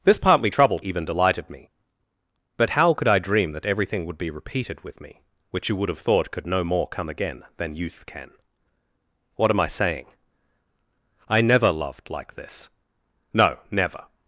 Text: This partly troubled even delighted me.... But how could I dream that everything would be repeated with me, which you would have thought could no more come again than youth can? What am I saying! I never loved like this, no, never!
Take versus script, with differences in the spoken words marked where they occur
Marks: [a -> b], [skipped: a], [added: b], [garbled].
This partly troubled even delighted me.... But how could I dream that everything would be repeated with me, which you would have thought could no more come again than youth can? What am I saying! I never loved like this, no, never!